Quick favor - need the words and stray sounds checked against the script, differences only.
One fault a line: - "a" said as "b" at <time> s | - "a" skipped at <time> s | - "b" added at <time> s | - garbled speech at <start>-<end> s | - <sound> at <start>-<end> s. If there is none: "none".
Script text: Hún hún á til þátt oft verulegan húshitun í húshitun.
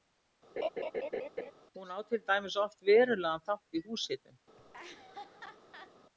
- laugh at 0.6-1.5 s
- "hún" skipped at 1.9 s
- "þátt" said as "dæmis" at 2.3 s
- "húshitun" said as "þátt" at 3.5 s
- laugh at 4.6-5.9 s